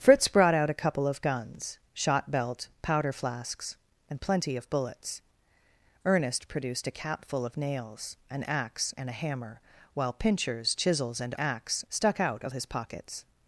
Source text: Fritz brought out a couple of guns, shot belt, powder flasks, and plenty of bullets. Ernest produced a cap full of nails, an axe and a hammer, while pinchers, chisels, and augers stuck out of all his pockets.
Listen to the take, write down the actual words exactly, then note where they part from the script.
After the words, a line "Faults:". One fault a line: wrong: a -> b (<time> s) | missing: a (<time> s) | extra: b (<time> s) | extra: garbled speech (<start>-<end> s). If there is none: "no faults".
Fritz brought out a couple of guns, shot belt, powder flasks, and plenty of bullets. Ernest produced a cap full of nails, an axe and a hammer, while pinchers, chisels, and axe stuck out of his pockets.
Faults:
wrong: augers -> axe (11.4 s)
missing: all (12.5 s)